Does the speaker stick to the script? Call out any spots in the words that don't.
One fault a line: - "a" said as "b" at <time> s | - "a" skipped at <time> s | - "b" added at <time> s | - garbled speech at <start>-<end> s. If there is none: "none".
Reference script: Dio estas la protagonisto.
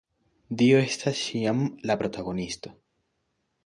- "ĉiam" added at 1.2 s